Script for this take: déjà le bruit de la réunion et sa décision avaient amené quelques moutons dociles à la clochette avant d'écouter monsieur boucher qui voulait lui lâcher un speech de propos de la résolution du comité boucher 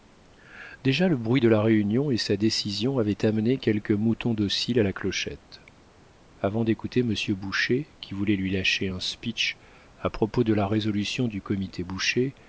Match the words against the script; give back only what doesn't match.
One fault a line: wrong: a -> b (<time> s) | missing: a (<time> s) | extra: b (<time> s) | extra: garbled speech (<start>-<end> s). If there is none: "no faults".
wrong: de -> à (10.0 s)